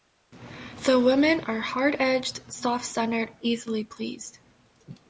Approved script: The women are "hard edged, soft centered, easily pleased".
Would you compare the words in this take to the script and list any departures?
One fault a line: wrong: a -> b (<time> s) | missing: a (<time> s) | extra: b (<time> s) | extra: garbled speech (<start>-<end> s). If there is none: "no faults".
no faults